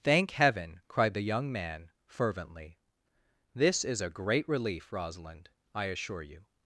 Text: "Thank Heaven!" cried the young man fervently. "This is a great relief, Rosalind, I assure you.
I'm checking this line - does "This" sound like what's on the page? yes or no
yes